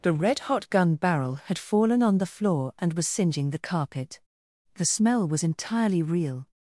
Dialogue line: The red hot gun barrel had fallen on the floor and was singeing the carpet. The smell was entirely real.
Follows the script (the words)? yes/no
yes